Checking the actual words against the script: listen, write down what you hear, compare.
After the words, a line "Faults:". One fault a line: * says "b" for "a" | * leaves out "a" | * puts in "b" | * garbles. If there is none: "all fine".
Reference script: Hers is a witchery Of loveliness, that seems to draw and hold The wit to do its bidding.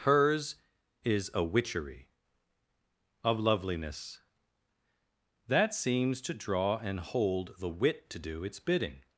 Hers is a witchery Of loveliness, that seems to draw and hold The wit to do its bidding.
Faults:
all fine